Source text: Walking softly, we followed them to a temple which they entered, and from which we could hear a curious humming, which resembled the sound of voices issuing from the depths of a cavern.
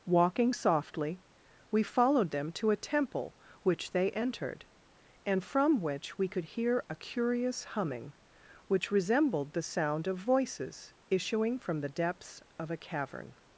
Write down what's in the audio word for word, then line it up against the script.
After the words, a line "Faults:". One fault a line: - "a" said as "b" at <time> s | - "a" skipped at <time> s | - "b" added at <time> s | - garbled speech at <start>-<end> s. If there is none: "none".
Walking softly, we followed them to a temple which they entered, and from which we could hear a curious humming, which resembled the sound of voices issuing from the depths of a cavern.
Faults:
none